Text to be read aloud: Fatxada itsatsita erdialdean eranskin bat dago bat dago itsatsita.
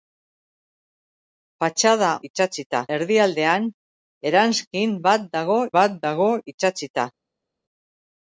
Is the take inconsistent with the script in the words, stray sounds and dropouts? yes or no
no